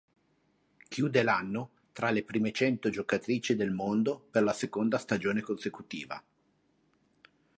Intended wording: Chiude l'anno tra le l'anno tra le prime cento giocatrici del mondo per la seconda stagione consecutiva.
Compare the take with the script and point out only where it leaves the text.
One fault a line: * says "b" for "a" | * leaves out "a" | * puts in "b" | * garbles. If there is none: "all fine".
* leaves out "l'anno tra le"